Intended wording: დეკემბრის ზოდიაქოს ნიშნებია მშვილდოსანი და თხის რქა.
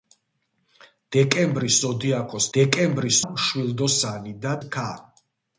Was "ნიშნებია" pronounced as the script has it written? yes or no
no